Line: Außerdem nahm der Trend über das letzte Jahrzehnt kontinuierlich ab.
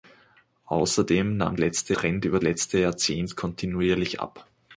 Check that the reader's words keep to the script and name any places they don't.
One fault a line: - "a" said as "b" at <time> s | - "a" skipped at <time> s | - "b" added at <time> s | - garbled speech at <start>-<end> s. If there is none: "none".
- "der" said as "letzte" at 1.6 s
- "das" skipped at 2.4 s